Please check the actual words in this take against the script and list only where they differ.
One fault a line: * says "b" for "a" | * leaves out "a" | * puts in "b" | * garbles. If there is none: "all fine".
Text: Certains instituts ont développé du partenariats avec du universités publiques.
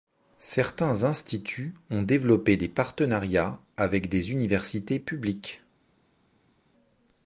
* says "des" for "du"
* says "des" for "du"